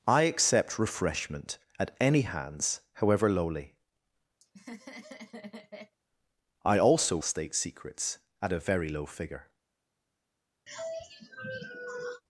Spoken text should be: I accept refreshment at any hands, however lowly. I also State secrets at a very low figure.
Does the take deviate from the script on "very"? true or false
false